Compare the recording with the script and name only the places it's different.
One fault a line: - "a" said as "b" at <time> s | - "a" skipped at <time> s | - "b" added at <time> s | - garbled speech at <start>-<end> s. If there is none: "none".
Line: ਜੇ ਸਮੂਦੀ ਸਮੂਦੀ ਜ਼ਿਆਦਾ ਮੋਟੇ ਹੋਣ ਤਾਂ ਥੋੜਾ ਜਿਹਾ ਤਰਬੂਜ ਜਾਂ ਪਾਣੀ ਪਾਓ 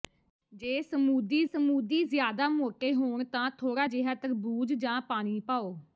none